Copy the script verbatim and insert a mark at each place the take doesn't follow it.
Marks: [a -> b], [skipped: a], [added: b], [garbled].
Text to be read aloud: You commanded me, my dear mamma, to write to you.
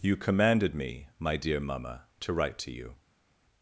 You commanded me, my dear mamma, to write to you.